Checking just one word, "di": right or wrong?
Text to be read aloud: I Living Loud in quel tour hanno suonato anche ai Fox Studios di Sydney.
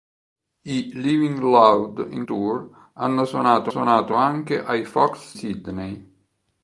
wrong